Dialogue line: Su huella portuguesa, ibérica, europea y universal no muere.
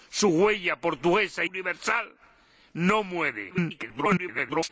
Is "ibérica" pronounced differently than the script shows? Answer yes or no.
yes